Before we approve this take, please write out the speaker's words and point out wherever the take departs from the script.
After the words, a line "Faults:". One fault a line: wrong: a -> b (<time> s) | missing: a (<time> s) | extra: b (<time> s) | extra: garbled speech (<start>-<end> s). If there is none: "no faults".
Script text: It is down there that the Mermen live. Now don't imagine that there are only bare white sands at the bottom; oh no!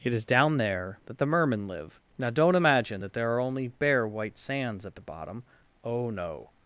It is down there that the Mermen live. Now don't imagine that there are only bare white sands at the bottom; oh no!
Faults:
no faults